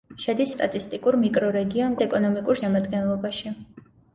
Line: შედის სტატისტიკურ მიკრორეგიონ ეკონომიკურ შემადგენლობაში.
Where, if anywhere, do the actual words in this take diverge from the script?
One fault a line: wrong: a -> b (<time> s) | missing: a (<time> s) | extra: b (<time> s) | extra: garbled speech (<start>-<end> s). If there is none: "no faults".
no faults